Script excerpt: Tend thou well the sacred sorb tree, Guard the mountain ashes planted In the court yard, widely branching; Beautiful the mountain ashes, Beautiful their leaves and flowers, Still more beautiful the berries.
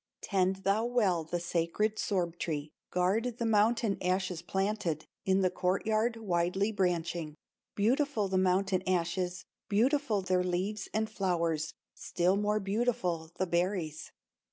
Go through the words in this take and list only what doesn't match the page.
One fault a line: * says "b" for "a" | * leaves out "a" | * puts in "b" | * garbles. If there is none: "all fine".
all fine